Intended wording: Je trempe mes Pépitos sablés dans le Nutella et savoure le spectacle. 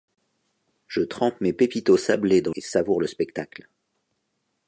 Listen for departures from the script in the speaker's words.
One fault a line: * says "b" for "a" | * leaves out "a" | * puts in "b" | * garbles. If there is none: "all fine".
* leaves out "le Nutella"